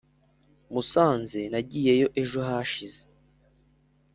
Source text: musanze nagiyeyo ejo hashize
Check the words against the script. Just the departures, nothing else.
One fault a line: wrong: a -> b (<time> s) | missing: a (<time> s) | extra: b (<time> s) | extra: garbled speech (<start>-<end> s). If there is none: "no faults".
no faults